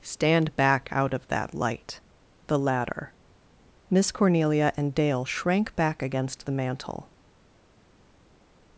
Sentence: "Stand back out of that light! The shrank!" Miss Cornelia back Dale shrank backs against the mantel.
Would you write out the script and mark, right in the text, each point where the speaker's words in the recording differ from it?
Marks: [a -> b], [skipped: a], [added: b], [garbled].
"Stand back out of that light! The [shrank!" -> ladder] Miss Cornelia [back -> and] Dale shrank [backs -> back] against the mantel.